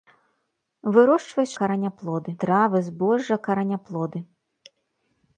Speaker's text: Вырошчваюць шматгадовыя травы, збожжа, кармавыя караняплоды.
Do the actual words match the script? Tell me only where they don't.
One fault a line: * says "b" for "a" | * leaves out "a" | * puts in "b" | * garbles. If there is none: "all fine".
* says "караняплоды" for "шматгадовыя"
* leaves out "кармавыя"